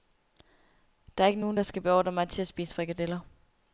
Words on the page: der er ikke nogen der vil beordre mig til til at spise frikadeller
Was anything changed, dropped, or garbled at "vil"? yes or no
yes